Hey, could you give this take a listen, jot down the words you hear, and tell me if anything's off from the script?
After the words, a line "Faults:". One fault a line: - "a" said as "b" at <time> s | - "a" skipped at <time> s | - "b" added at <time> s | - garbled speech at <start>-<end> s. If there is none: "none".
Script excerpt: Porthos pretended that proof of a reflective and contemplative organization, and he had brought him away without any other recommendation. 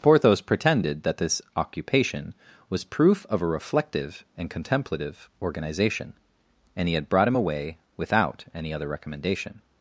Porthos pretended that this occupation was proof of a reflective and contemplative organization, and he had brought him away without any other recommendation.
Faults:
- "this occupation was" added at 1.2 s